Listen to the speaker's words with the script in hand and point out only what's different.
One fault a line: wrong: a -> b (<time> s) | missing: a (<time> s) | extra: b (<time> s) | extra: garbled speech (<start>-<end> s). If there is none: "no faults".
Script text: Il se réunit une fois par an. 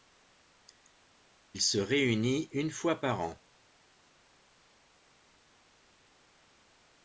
no faults